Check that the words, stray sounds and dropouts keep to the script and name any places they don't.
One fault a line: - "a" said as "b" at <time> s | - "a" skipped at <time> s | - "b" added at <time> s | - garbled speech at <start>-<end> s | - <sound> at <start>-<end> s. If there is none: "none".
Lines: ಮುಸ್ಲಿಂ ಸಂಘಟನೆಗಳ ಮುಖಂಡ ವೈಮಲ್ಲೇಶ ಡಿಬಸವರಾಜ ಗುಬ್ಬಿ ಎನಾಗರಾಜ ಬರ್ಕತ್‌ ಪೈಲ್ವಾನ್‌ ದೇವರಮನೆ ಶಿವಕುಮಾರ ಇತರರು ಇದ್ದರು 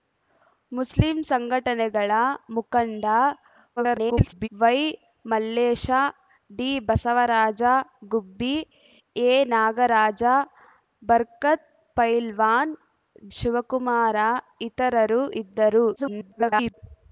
- garbled speech at 3.8-4.5 s
- "ದೇವರಮನೆ" skipped at 12.7 s
- garbled speech at 16.0-16.7 s